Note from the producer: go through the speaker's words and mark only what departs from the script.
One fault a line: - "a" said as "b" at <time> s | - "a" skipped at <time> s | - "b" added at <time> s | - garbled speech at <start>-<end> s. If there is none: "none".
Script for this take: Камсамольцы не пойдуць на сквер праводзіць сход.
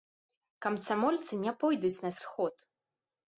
- "сквер праводзіць" skipped at 2.1 s